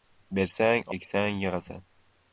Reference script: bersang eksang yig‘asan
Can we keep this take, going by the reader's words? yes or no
yes